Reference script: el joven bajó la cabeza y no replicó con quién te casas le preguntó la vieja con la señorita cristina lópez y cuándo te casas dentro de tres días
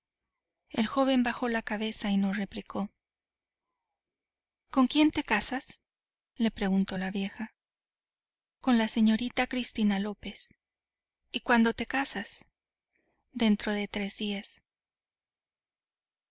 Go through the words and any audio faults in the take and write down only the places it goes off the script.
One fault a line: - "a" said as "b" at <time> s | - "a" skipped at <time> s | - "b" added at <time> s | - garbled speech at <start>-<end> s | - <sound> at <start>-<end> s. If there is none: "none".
none